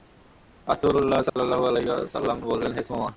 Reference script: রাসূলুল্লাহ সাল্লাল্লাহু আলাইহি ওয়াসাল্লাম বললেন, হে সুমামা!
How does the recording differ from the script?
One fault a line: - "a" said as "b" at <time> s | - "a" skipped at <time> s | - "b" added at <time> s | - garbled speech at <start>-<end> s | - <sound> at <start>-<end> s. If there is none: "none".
- dropout at 1.3-1.4 s